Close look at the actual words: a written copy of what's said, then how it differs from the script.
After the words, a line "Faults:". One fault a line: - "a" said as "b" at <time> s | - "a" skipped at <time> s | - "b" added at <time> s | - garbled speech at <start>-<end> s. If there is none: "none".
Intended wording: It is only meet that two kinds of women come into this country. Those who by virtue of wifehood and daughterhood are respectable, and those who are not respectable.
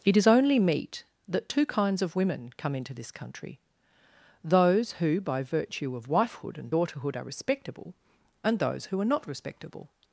It is only meet that two kinds of women come into this country. Those who by virtue of wifehood and daughterhood are respectable, and those who are not respectable.
Faults:
none